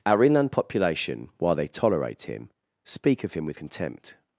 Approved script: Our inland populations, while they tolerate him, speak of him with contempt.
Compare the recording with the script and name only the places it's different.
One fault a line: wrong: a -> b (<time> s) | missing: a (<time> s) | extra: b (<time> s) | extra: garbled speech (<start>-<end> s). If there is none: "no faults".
wrong: populations -> population (0.5 s)